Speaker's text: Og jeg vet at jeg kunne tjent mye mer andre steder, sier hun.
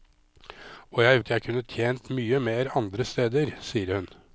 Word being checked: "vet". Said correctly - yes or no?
no